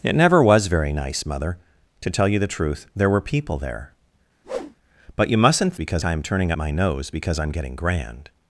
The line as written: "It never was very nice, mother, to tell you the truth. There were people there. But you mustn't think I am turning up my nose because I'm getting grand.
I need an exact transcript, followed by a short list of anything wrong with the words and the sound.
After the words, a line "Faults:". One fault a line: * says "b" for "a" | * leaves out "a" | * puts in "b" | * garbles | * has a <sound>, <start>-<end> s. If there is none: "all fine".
"It never was very nice, mother, to tell you the truth. There were people there. But you mustn't because I am turning my nose because I'm getting grand.
Faults:
* has a whoosh, 4.4-4.8 s
* says "because" for "think"
* leaves out "up"